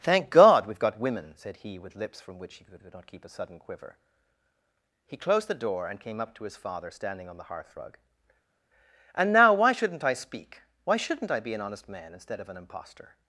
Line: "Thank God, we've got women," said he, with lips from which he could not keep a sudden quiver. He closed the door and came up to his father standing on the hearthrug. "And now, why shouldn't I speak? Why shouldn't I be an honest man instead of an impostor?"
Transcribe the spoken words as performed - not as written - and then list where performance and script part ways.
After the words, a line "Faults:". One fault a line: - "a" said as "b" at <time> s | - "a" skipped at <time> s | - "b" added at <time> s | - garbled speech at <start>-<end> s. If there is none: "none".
"Thank God, we've got women," said he, with lips from which he could could not keep a sudden quiver. He closed the door and came up to his father standing on the hearthrug. "And now, why shouldn't I speak? Why shouldn't I be an honest man instead of an impostor?"
Faults:
- "could" added at 2.8 s